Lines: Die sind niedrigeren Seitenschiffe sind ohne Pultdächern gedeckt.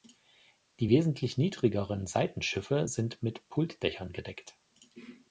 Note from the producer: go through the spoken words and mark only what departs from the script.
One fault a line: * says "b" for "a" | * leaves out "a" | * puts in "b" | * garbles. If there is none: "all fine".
* says "wesentlich" for "sind"
* says "mit" for "ohne"